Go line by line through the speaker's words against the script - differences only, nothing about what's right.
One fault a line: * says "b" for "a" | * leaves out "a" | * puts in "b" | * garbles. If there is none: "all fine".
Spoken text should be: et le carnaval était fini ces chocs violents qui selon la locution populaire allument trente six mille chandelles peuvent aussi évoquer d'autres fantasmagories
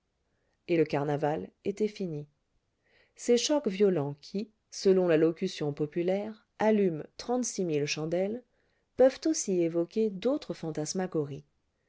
all fine